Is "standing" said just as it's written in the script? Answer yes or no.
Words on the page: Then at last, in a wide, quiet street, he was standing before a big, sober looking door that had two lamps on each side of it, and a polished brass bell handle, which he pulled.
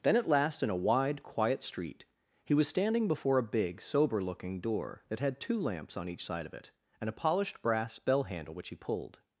yes